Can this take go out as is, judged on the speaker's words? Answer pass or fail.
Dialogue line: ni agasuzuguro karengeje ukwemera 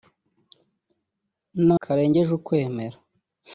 fail